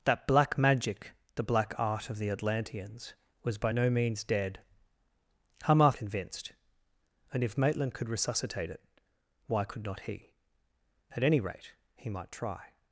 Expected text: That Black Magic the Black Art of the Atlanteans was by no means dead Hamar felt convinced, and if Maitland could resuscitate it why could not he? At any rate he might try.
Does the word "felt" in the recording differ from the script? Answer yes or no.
yes